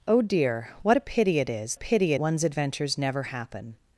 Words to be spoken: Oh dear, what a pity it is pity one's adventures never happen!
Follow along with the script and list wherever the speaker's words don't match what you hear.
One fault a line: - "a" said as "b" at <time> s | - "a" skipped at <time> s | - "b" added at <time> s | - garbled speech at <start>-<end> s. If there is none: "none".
none